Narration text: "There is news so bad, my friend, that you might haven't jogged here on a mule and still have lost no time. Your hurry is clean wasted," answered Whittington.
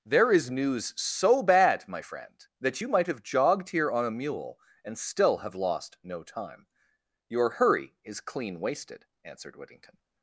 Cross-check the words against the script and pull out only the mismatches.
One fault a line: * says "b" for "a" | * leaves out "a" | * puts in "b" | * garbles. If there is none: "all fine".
* says "have" for "haven't"